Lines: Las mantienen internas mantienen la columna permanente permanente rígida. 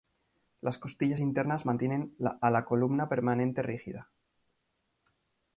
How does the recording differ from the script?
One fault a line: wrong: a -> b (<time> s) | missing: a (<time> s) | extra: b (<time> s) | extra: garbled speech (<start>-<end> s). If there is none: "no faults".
wrong: mantienen -> costillas (0.8 s)
extra: a (2.4 s)
missing: permanente (3.6 s)